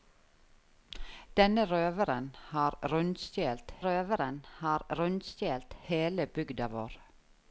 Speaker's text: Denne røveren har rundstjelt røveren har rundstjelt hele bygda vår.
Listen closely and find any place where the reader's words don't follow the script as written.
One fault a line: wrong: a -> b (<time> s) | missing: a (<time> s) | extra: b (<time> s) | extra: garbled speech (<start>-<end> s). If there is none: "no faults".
no faults